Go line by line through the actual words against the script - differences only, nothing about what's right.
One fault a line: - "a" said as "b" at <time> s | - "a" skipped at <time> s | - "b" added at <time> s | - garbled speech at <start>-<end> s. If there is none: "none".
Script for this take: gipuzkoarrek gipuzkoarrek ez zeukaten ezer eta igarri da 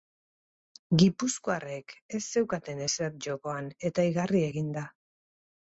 - "gipuzkoarrek" skipped at 1.9 s
- "jokoan" added at 3.3 s
- "egin" added at 4.5 s